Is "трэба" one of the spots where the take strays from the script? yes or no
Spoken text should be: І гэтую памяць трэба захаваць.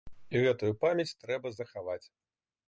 no